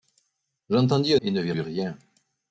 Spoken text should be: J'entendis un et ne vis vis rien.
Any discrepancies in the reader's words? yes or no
no